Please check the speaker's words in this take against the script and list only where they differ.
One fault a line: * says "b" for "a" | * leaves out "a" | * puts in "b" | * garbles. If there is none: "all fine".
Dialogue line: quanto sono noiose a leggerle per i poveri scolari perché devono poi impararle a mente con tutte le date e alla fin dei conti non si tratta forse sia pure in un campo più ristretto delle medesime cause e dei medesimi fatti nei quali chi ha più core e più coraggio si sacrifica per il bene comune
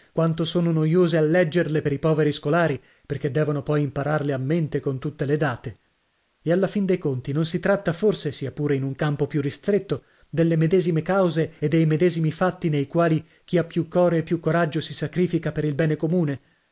all fine